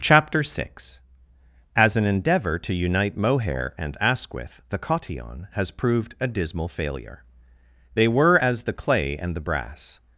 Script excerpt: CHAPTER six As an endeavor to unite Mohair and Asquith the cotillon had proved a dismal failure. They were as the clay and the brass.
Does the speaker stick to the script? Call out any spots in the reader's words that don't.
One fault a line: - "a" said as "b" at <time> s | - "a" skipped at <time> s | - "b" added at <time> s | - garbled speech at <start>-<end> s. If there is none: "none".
- "had" said as "has" at 5.5 s